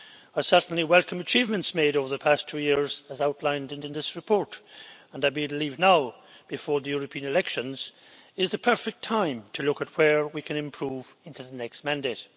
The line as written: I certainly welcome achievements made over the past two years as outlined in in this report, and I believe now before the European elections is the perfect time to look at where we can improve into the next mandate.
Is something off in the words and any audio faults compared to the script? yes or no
no